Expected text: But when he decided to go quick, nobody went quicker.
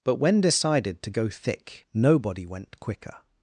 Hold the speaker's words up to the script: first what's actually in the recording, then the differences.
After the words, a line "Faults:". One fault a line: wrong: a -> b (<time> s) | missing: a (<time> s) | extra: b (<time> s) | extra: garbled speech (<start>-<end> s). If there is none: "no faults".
But when decided to go thick, nobody went quicker.
Faults:
missing: he (0.4 s)
wrong: quick -> thick (1.3 s)